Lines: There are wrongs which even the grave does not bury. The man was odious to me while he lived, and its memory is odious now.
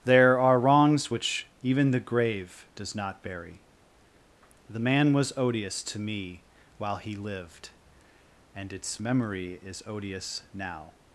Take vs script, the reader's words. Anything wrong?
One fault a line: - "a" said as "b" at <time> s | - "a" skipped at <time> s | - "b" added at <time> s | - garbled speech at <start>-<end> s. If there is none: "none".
none